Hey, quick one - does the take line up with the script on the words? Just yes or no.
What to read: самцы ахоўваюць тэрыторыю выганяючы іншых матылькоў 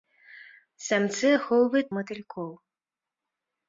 no